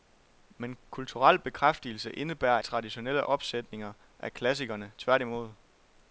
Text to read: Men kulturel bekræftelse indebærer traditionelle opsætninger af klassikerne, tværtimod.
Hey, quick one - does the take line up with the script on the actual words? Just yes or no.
yes